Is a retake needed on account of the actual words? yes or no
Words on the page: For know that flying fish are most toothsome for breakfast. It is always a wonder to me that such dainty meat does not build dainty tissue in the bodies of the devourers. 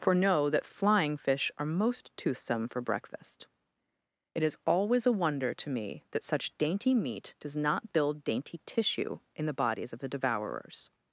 no